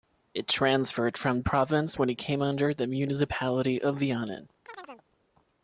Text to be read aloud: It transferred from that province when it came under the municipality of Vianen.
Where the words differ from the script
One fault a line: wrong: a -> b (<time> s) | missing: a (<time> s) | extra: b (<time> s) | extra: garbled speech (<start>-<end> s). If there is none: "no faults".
missing: that (1.4 s)